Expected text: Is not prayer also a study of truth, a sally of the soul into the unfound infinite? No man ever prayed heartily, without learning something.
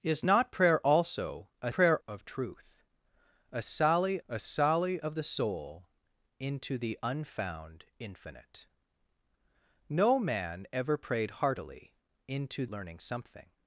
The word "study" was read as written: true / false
false